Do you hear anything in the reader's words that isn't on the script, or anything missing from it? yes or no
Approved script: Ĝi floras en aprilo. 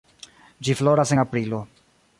no